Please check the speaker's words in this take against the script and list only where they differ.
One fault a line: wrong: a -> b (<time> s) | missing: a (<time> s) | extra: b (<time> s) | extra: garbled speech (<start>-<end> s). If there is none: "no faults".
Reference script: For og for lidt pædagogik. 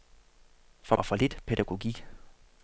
no faults